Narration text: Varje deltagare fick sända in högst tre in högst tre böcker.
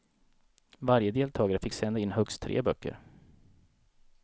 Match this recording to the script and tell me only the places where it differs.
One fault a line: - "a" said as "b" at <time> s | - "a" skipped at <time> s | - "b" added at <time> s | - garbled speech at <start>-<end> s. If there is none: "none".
- "in högst tre" skipped at 2.6 s